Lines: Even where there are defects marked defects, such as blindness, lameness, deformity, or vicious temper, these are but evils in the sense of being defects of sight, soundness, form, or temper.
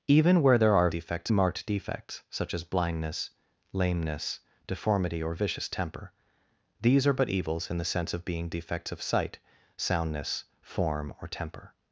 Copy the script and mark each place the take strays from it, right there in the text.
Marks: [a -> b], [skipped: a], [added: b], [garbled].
Even where there are defects marked defects, such as blindness, lameness, deformity, or vicious temper, these are but evils in the sense of being defects of sight, soundness, form, or temper.